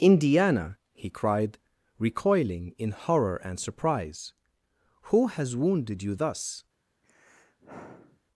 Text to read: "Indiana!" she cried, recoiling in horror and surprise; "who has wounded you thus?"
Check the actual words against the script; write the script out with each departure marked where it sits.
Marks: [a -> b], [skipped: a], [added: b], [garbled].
"Indiana!" [she -> he] cried, recoiling in horror and surprise; "who has wounded you thus?"